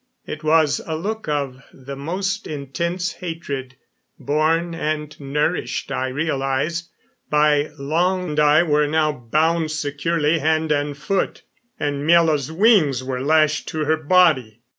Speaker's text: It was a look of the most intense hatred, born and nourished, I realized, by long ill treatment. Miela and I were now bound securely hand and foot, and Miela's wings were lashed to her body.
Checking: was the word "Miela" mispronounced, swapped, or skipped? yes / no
yes